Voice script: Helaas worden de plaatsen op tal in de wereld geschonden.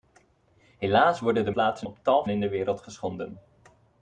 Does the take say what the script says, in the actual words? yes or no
yes